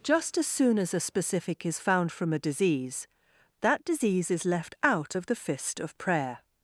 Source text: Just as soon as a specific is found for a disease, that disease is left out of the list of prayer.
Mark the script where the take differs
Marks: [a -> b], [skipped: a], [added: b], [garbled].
Just as soon as a specific is found [for -> from] a disease, that disease is left out of the [list -> fist] of prayer.